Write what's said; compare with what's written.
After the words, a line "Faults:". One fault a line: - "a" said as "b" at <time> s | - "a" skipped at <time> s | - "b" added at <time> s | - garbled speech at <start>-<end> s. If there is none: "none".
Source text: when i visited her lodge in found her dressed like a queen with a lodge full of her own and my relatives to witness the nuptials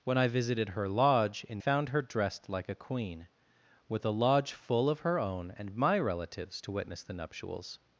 when i visited her lodge in found her dressed like a queen with a lodge full of her own and my relatives to witness the nuptials
Faults:
none